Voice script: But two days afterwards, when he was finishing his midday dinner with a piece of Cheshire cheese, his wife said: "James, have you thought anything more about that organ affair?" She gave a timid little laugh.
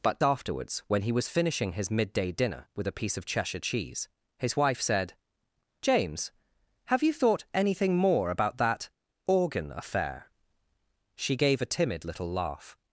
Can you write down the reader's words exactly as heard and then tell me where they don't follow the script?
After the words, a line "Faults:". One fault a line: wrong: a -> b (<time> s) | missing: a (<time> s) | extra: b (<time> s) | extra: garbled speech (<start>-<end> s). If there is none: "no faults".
But afterwards, when he was finishing his midday dinner with a piece of Cheshire cheese, his wife said: "James, have you thought anything more about that organ affair?" She gave a timid little laugh.
Faults:
missing: two days (0.2 s)